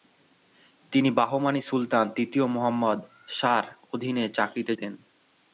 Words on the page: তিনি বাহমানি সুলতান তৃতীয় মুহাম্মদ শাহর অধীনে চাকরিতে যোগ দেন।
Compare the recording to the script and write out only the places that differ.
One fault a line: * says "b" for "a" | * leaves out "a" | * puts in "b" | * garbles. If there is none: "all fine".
* leaves out "যোগ"